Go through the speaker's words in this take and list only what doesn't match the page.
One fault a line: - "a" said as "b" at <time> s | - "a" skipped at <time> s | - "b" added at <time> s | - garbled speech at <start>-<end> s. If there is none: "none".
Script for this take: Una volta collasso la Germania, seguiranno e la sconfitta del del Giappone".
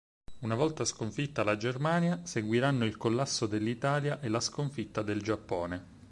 - "collasso" said as "sconfitta" at 0.8 s
- "il collasso dell'Italia" added at 2.9 s
- "del" skipped at 5.2 s